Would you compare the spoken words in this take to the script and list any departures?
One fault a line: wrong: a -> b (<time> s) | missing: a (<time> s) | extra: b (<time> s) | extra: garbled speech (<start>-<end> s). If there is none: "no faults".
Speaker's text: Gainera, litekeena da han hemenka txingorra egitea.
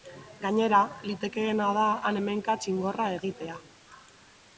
no faults